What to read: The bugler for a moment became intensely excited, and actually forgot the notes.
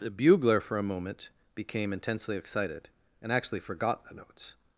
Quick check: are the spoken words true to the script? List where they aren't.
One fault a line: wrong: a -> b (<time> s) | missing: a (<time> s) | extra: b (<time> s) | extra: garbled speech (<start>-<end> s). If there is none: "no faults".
no faults